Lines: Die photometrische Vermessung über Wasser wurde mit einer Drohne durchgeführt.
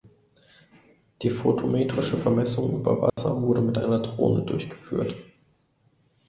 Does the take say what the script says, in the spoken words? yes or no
yes